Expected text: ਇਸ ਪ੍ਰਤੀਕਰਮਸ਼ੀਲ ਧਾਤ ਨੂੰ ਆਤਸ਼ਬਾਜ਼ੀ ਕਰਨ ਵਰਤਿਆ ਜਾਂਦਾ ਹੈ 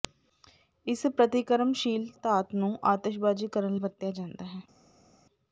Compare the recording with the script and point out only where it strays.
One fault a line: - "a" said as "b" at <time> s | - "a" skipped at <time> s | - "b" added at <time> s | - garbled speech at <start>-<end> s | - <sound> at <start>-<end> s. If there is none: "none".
none